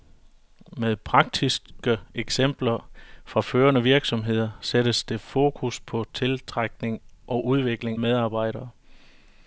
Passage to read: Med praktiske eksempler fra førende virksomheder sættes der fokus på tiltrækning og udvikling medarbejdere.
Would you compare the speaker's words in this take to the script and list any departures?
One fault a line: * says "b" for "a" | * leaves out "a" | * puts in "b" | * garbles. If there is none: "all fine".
all fine